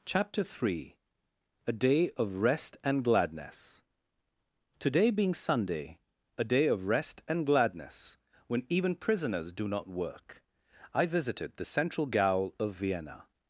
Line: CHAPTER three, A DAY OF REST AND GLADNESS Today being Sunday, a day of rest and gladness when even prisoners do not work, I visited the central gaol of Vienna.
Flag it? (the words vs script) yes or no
no